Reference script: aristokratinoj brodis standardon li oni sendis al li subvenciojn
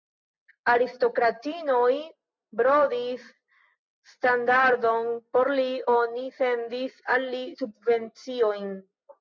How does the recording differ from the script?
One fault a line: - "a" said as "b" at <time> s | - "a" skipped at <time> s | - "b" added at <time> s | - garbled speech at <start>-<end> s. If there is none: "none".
- "por" added at 5.4 s